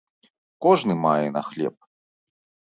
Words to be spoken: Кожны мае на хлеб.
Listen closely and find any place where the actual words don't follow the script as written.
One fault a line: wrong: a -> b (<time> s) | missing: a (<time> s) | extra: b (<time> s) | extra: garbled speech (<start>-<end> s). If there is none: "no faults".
no faults